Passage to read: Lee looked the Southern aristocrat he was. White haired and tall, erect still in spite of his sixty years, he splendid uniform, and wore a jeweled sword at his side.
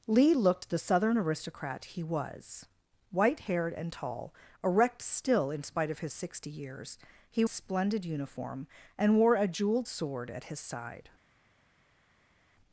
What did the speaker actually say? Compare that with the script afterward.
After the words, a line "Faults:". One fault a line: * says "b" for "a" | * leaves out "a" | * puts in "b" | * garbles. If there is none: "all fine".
Lee looked the Southern aristocrat he was. White haired and tall, erect still in spite of his sixty years, he splendid uniform, and wore a jeweled sword at his side.
Faults:
all fine